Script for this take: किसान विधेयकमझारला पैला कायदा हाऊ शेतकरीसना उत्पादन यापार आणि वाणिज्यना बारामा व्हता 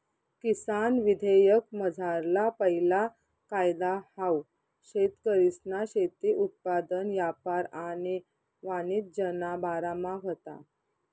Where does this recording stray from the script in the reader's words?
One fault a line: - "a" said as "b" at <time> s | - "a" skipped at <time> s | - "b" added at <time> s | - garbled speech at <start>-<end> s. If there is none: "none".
- "शेती" added at 5.9 s